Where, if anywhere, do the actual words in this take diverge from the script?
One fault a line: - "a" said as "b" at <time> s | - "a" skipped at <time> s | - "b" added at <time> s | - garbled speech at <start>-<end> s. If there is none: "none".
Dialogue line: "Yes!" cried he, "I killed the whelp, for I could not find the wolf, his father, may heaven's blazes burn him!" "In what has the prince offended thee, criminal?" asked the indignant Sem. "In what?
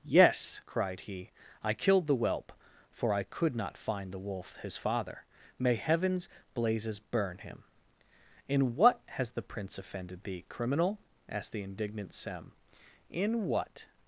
none